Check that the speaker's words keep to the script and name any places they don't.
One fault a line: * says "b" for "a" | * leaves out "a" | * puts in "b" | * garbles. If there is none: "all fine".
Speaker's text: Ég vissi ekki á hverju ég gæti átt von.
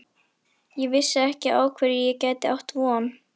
all fine